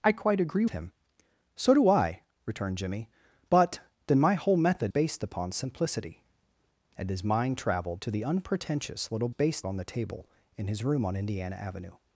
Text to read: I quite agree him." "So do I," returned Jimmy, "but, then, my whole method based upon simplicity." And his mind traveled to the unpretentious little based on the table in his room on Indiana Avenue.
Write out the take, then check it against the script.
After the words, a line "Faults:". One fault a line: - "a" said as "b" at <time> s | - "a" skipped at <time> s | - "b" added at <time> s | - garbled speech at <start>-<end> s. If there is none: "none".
I quite agree him." "So do I," returned Jimmy, "but, then, my whole method based upon simplicity." And his mind traveled to the unpretentious little based on the table in his room on Indiana Avenue.
Faults:
none